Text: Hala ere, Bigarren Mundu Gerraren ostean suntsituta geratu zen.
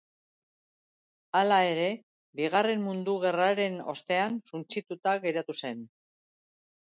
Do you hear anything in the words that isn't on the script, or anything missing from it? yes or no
no